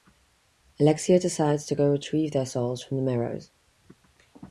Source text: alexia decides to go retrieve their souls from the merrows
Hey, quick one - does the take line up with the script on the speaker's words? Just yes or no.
yes